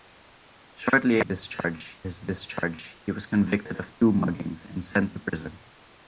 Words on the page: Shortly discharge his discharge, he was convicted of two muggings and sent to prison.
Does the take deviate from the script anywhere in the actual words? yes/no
no